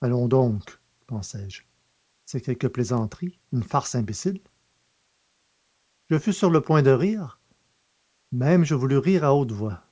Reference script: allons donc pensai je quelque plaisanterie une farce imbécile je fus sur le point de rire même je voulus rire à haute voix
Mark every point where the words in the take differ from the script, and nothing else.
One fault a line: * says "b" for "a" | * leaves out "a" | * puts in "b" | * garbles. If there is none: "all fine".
* puts in "c'est"